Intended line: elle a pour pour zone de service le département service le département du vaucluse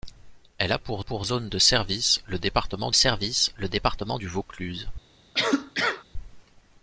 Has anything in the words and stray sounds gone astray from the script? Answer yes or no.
yes